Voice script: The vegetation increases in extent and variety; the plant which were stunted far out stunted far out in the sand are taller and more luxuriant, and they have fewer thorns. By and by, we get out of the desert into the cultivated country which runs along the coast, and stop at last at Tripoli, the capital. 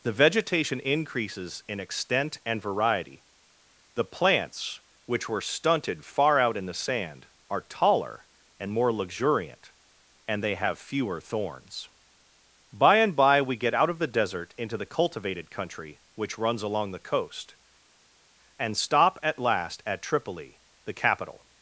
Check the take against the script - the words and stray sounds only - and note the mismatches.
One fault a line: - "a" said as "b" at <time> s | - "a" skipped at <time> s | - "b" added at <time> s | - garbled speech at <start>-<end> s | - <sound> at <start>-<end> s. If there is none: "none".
- "plant" said as "plants" at 4.0 s
- "stunted far out" skipped at 6.6 s